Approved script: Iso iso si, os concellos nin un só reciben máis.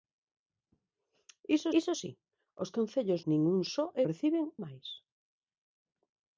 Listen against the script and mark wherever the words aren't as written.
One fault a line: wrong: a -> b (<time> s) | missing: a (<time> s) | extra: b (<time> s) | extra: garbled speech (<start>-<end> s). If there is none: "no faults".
no faults